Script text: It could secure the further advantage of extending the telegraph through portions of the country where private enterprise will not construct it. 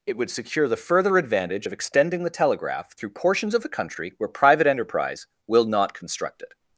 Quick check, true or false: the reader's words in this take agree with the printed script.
false